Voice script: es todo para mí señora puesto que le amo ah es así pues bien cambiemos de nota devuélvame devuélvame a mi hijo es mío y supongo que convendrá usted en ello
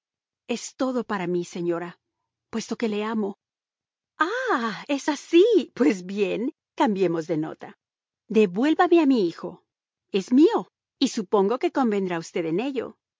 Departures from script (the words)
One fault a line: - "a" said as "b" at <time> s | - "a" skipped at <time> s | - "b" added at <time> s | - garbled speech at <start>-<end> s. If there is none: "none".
- "devuélvame" skipped at 9.0 s